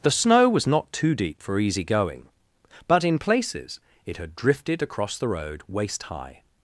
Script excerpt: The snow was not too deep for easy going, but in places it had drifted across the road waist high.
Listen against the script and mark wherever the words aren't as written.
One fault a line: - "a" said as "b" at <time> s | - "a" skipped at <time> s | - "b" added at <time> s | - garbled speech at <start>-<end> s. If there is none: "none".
none